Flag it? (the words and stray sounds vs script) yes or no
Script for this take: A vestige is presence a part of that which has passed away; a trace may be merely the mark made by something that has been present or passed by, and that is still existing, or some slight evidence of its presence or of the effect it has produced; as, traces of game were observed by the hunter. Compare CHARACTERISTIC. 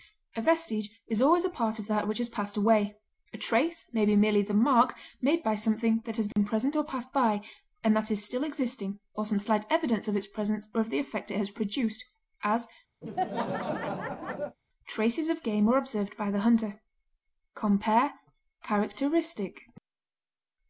yes